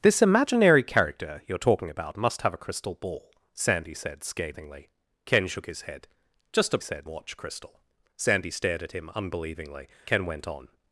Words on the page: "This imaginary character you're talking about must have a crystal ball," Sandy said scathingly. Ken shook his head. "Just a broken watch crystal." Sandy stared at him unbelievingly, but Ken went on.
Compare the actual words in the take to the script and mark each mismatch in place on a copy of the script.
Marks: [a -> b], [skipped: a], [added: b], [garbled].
"This imaginary character you're talking about must have a crystal ball," Sandy said scathingly. Ken shook his head. "Just a [broken -> said] watch crystal." Sandy stared at him unbelievingly, [skipped: but] Ken went on.